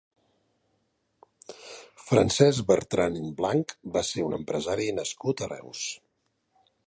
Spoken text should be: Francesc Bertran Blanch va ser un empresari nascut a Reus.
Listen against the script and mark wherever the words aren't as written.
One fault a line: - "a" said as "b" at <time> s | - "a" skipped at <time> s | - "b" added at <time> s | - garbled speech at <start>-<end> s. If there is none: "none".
none